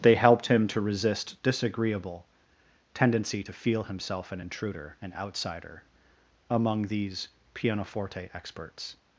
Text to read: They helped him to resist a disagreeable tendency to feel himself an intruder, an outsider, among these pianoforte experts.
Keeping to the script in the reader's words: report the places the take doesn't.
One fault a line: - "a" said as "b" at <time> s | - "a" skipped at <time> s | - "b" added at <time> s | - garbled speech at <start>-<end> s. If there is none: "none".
- "a" skipped at 1.4 s